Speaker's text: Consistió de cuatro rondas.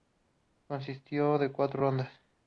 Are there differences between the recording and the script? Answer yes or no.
no